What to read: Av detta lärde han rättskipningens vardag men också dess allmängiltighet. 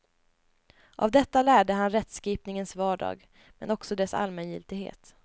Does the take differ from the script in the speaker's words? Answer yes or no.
no